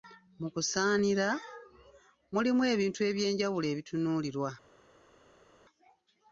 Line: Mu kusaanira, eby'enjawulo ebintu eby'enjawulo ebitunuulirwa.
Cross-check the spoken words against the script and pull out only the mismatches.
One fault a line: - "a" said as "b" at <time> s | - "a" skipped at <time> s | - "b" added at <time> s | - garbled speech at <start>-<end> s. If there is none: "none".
- "eby'enjawulo" said as "mulimu" at 2.3 s